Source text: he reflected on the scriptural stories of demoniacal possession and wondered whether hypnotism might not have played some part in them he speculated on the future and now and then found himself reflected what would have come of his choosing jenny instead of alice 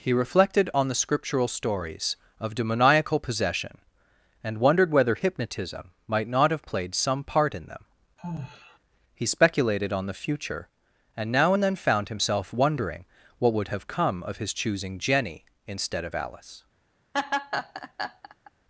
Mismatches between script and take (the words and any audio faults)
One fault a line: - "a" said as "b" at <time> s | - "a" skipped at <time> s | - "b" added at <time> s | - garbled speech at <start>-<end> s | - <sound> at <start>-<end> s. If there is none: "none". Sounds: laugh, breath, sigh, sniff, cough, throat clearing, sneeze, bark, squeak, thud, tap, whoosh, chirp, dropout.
- sigh at 8.2-8.8 s
- "reflected" said as "wondering" at 12.5 s
- laugh at 17.1-18.5 s